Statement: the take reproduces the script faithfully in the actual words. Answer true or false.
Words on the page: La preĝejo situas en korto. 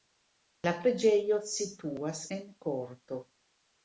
true